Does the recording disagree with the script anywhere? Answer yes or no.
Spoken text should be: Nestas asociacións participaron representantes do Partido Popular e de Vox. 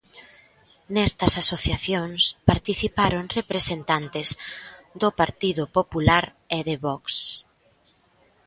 no